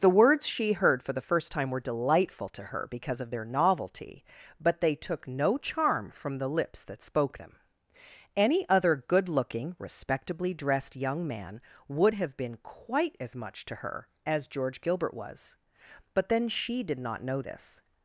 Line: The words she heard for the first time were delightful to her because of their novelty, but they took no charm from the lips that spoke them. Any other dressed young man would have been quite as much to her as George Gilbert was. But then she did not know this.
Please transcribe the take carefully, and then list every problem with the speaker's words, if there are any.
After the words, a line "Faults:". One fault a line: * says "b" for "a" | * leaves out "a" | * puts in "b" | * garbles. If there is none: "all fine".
The words she heard for the first time were delightful to her because of their novelty, but they took no charm from the lips that spoke them. Any other good looking, respectably dressed young man would have been quite as much to her as George Gilbert was. But then she did not know this.
Faults:
* puts in "good looking respectably"